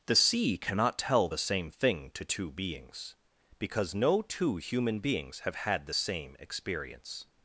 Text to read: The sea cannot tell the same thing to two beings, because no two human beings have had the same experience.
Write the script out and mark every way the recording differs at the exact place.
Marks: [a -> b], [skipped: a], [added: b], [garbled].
The sea cannot tell the same thing to two beings, because no two human beings have had the same experience.